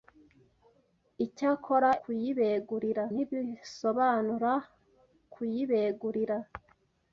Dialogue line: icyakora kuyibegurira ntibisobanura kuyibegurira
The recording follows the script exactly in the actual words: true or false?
true